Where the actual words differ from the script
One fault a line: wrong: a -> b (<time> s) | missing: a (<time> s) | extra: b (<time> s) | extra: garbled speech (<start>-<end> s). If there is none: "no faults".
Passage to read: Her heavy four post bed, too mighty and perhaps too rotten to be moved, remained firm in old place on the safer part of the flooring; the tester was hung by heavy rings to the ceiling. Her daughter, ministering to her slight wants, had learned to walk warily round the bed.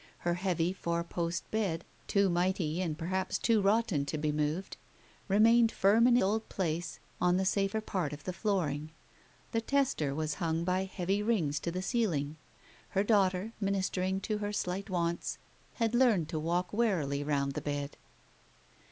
no faults